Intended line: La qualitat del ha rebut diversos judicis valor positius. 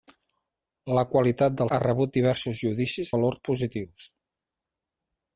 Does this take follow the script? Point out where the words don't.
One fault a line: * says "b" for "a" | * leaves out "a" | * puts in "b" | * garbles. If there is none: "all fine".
all fine